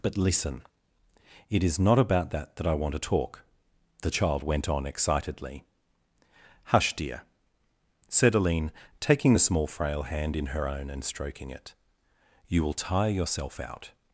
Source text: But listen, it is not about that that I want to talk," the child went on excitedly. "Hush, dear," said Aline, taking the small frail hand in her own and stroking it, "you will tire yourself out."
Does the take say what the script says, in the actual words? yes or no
yes